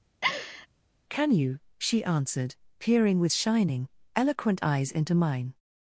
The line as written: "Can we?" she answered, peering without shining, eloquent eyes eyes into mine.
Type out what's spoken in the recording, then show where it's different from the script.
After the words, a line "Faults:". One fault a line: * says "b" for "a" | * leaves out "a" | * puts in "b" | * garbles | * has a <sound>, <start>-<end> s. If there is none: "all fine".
"Can you?" she answered, peering with shining, eloquent eyes into mine.
Faults:
* has a laugh, 0.2-0.7 s
* says "you" for "we"
* says "with" for "without"
* leaves out "eyes"